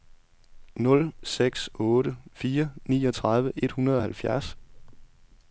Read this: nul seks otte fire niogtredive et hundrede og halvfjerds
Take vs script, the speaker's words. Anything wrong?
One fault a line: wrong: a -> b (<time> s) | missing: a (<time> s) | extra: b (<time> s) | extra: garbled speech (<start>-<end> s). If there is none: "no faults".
no faults